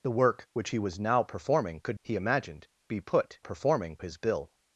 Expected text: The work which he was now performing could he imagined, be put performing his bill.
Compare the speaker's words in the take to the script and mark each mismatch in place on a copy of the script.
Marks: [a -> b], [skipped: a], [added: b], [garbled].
The work which he was now performing could he imagined, be put performing his bill.